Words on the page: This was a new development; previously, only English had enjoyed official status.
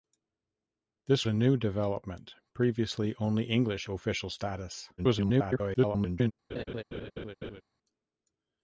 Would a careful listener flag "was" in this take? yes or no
yes